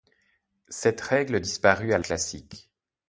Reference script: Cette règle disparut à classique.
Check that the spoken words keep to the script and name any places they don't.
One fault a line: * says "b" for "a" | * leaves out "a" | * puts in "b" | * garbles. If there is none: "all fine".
all fine